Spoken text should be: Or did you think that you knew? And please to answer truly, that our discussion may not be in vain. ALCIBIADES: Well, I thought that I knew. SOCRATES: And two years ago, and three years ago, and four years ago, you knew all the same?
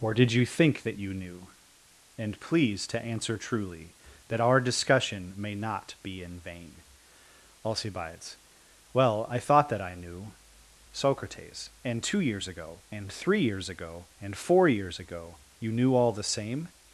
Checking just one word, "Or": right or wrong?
right